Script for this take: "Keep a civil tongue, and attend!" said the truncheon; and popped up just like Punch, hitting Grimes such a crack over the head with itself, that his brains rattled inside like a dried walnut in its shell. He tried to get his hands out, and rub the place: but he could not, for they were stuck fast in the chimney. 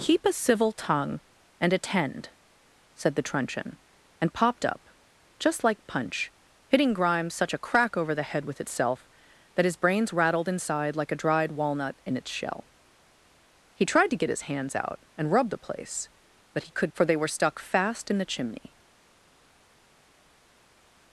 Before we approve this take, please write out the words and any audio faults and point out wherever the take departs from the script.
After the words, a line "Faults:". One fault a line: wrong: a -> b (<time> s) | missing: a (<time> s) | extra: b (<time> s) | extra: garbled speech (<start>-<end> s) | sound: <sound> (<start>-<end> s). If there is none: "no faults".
"Keep a civil tongue, and attend!" said the truncheon; and popped up just like Punch, hitting Grimes such a crack over the head with itself, that his brains rattled inside like a dried walnut in its shell. He tried to get his hands out, and rub the place: but he could for they were stuck fast in the chimney.
Faults:
missing: not (16.9 s)